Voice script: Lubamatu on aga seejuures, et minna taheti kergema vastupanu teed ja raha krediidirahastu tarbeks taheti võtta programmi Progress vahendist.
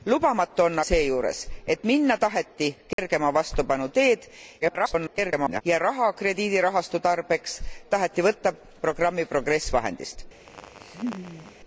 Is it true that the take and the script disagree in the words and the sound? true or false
true